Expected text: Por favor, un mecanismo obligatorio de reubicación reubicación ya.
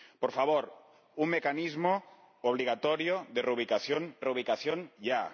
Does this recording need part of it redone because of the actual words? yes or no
no